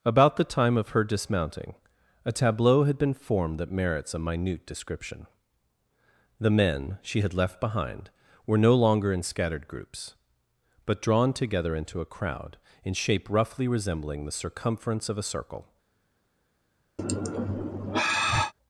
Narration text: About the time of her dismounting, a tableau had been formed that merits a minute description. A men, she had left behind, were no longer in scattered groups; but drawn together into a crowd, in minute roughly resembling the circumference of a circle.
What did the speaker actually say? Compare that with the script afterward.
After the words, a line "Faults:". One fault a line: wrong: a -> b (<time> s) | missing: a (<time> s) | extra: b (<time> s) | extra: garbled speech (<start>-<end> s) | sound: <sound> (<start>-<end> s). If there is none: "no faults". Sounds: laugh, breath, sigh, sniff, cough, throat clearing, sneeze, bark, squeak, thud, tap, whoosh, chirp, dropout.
About the time of her dismounting, a tableau had been formed that merits a minute description. The men, she had left behind, were no longer in scattered groups; but drawn together into a crowd, in shape roughly resembling the circumference of a circle.
Faults:
wrong: A -> The (6.4 s)
wrong: minute -> shape (12.9 s)
sound: sigh (17.0-18.5 s)